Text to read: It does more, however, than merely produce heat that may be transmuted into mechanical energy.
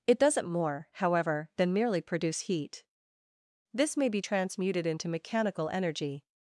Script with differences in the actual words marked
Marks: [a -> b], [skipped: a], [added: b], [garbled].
It [does -> doesn't] more, however, than merely produce heat [that -> this] may be transmuted into mechanical energy.